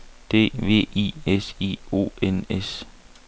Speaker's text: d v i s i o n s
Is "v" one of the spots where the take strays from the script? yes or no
no